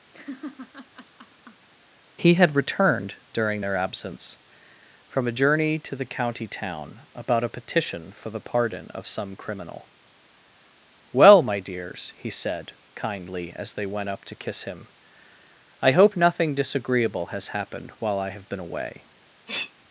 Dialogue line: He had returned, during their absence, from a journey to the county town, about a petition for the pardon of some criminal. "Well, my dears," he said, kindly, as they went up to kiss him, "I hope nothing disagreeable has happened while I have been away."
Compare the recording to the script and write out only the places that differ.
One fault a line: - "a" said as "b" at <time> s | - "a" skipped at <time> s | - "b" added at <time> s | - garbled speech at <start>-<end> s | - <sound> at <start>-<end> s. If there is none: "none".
- laugh at 0.1-1.7 s
- sneeze at 19.5-19.7 s